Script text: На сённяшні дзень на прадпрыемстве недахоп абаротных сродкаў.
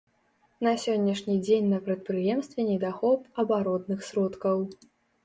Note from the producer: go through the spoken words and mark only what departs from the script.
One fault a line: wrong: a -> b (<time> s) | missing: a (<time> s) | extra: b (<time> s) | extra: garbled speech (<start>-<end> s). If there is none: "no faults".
no faults